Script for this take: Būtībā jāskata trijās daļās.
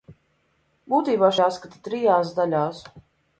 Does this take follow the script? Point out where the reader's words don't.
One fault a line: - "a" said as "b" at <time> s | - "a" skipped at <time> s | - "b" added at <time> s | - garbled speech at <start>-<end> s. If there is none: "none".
none